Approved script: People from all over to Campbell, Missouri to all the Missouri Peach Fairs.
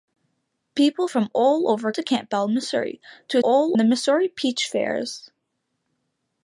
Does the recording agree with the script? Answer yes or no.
yes